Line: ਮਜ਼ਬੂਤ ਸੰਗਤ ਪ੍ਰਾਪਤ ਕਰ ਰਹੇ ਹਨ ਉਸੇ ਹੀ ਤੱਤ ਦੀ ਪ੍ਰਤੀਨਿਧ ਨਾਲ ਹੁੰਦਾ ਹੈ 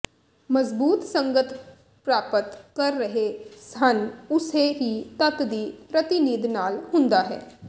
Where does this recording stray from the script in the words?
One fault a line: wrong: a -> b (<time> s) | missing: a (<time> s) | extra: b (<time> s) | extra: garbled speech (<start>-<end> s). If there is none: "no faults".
no faults